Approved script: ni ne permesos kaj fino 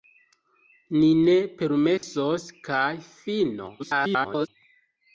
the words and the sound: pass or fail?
fail